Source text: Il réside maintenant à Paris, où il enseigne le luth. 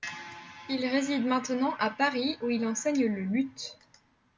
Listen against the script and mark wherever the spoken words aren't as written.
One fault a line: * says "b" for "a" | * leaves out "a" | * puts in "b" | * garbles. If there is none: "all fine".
all fine